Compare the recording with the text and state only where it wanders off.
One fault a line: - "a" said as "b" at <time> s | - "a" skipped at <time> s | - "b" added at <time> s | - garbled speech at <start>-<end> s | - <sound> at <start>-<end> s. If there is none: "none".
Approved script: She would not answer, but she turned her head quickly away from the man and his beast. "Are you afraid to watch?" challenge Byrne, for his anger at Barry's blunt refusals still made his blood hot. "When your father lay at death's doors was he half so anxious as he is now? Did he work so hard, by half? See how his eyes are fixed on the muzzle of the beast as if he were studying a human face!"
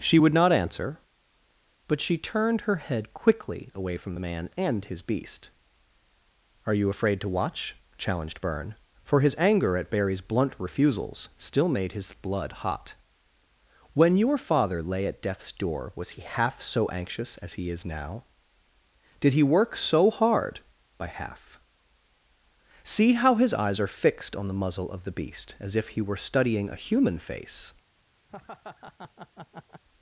- "challenge" said as "challenged" at 8.0 s
- "doors" said as "door" at 15.5 s
- laugh at 28.3-29.8 s